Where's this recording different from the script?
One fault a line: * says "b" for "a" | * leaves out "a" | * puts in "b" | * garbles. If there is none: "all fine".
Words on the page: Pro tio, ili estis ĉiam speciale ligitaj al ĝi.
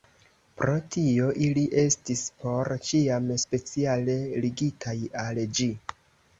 * puts in "por"